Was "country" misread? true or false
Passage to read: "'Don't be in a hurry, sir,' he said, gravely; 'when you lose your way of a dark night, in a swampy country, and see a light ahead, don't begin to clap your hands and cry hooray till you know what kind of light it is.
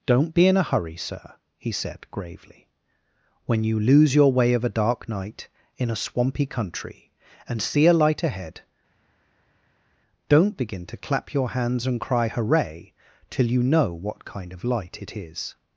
false